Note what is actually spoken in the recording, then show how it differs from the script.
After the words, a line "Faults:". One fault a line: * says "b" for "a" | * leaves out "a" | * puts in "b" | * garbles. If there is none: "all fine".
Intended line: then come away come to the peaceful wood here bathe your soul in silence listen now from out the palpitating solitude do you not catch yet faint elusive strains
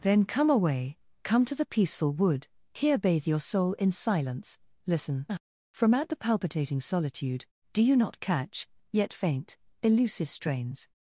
then come away come to the peaceful wood here bathe your soul in silence listen from out the palpitating solitude do you not catch yet faint elusive strains
Faults:
* leaves out "now"